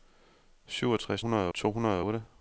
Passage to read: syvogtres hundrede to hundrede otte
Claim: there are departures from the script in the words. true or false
false